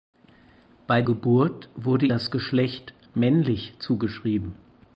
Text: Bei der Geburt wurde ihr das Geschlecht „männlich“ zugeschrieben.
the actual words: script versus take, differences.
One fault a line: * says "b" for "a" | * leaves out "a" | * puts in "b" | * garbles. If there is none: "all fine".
* leaves out "der"
* leaves out "ihr"